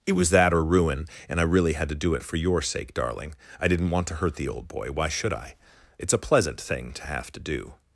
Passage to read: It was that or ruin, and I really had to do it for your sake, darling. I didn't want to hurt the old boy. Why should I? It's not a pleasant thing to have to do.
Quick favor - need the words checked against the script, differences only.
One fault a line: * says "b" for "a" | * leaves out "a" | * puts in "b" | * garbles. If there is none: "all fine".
* leaves out "not"